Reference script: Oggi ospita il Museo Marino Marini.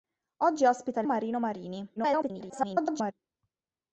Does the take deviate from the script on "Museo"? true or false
true